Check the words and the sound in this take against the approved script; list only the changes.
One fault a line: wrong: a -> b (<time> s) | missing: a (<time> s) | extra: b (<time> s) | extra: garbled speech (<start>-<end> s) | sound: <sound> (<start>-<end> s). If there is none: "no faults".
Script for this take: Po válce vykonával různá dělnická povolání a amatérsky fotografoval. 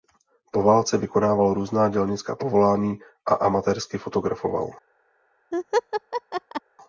sound: laugh (5.5-6.6 s)